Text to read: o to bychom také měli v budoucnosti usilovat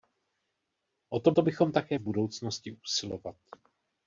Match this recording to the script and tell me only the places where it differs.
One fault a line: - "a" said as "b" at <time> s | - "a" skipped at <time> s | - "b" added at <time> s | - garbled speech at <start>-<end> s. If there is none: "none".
- "to" added at 1.3 s
- "měli" skipped at 2.0 s